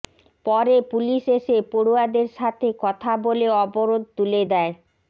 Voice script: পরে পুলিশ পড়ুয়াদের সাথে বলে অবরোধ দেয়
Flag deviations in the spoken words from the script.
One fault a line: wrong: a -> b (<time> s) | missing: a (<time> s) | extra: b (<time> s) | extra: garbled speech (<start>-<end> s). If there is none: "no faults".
extra: এসে (1.4 s)
extra: কথা (2.8 s)
extra: তুলে (4.2 s)